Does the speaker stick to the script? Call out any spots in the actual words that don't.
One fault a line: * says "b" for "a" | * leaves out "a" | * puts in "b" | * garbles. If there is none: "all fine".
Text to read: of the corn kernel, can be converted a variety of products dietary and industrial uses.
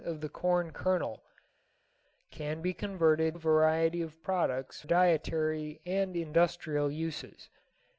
all fine